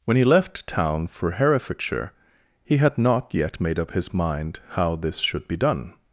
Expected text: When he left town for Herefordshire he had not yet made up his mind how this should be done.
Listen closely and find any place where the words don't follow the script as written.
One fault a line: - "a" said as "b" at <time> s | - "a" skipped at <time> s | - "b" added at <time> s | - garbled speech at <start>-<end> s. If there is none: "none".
none